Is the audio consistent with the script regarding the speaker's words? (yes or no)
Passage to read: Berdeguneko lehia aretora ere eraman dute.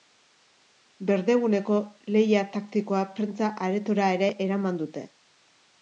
no